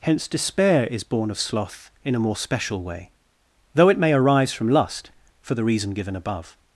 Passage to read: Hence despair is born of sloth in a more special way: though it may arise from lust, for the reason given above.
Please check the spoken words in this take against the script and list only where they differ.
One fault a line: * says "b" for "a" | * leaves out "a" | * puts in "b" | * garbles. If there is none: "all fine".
all fine